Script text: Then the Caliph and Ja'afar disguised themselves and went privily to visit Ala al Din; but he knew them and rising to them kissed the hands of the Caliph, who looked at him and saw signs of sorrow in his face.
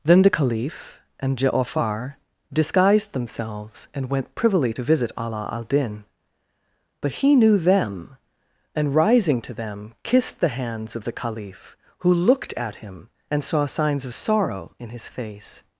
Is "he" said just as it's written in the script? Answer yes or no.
yes